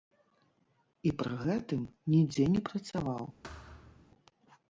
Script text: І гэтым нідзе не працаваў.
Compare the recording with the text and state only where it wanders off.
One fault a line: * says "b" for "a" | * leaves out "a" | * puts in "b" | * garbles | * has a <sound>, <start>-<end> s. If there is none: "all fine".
* puts in "пры"
* has a thud, 3.4-4.1 s